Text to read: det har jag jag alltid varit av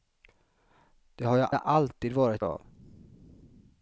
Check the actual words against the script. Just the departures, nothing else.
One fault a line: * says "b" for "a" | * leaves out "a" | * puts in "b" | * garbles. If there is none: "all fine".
all fine